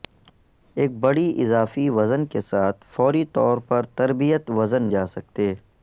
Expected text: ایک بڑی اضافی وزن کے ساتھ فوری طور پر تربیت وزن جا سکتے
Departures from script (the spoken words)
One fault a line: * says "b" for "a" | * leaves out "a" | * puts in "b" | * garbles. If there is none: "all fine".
all fine